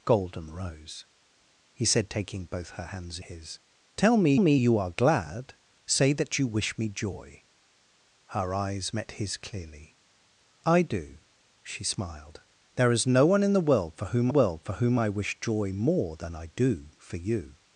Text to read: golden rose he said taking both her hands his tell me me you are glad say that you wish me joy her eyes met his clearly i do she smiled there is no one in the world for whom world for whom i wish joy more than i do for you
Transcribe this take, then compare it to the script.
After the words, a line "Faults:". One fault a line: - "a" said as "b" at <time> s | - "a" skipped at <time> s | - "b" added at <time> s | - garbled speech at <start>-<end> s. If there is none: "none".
golden rose he said taking both her hands his tell me me you are glad say that you wish me joy her eyes met his clearly i do she smiled there is no one in the world for whom world for whom i wish joy more than i do for you
Faults:
none